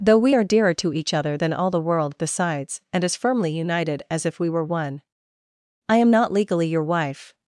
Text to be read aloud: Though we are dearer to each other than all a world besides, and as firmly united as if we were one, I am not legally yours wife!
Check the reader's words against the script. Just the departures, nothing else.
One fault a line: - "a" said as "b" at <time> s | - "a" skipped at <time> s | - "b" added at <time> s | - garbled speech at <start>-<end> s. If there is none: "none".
- "a" said as "the" at 1.7 s
- "yours" said as "your" at 6.7 s